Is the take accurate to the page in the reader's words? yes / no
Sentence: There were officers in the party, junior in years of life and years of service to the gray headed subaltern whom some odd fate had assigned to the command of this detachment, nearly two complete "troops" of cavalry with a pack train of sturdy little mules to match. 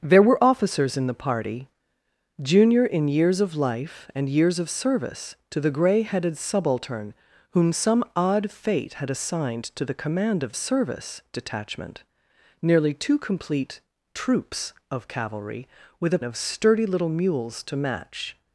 no